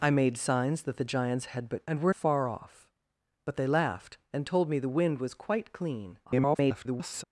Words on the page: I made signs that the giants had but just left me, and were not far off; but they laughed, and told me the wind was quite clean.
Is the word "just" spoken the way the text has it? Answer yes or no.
no